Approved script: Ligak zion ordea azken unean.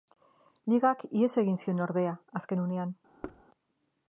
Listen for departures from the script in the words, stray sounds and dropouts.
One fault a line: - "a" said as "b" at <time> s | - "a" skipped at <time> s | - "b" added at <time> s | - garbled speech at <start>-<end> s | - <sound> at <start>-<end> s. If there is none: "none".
- "ihes egin" added at 1.2 s
- thud at 3.2-3.4 s